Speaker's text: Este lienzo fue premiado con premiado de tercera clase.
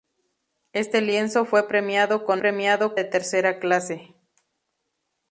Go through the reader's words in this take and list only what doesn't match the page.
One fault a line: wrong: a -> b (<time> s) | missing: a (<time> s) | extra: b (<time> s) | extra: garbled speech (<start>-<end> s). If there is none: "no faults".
no faults